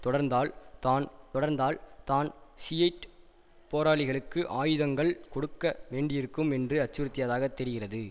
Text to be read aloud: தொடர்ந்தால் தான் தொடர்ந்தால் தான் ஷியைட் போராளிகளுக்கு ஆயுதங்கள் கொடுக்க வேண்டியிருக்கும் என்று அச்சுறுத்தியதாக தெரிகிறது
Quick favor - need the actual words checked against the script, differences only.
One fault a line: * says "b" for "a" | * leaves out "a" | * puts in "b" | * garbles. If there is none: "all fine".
all fine